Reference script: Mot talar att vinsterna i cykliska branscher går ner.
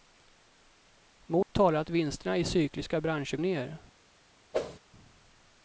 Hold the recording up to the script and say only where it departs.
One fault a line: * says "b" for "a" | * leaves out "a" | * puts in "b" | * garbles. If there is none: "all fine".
* leaves out "går"